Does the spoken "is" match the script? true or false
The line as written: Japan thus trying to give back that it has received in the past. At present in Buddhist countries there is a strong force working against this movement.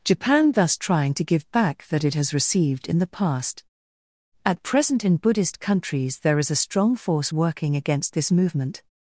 true